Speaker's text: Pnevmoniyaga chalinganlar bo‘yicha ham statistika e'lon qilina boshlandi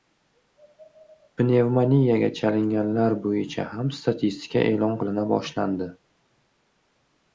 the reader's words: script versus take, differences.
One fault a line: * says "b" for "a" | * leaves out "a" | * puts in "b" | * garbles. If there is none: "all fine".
all fine